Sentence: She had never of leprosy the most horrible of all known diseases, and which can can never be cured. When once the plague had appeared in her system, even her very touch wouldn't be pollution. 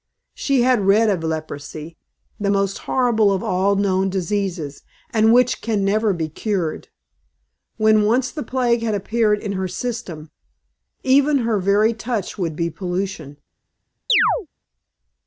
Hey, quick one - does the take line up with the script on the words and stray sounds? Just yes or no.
no